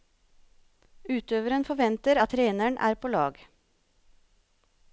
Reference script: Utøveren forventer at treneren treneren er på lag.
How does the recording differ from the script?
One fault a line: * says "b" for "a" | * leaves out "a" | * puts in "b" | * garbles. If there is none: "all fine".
* leaves out "treneren"